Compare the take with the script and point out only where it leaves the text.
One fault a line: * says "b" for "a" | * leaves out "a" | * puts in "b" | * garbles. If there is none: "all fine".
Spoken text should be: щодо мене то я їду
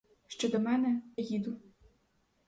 * leaves out "то я"